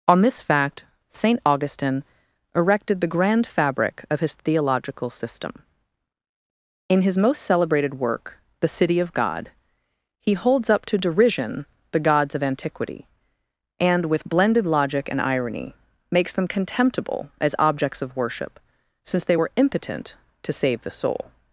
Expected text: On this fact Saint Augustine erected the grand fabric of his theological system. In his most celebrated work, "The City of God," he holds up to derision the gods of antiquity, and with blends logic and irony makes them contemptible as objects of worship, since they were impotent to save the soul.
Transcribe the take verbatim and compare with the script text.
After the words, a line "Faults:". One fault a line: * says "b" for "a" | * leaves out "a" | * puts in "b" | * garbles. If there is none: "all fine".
On this fact Saint Augustine erected the grand fabric of his theological system. In his most celebrated work, "The City of God," he holds up to derision the gods of antiquity, and with blended logic and irony makes them contemptible as objects of worship, since they were impotent to save the soul.
Faults:
* says "blended" for "blends"